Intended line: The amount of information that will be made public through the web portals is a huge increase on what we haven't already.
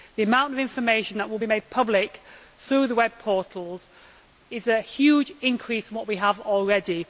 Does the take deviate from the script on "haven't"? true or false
true